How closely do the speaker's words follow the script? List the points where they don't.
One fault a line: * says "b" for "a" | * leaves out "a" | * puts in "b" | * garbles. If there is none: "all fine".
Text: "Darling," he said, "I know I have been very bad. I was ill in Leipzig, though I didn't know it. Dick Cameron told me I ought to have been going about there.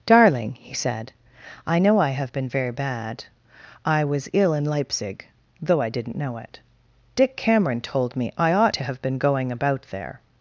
all fine